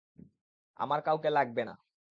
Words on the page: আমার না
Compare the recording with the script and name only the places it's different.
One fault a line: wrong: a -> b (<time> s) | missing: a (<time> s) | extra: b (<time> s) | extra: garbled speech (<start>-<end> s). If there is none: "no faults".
extra: কাউকে লাগবে (1.0 s)